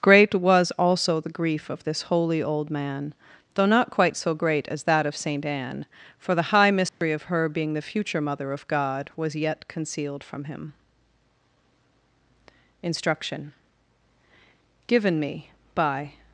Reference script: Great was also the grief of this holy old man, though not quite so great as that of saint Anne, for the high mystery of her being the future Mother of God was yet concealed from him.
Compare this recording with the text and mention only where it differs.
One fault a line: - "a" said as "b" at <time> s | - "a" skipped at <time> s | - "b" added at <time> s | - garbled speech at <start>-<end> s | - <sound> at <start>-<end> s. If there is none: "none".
- dropout at 6.9-7.0 s
- "INSTRUCTION GIVEN ME BY" added at 12.8 s